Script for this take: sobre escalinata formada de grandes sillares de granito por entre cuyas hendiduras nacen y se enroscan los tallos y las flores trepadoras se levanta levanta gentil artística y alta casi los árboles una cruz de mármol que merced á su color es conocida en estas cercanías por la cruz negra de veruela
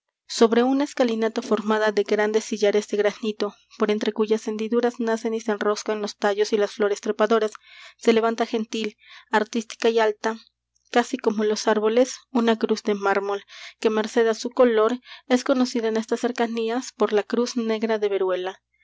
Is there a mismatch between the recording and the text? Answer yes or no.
yes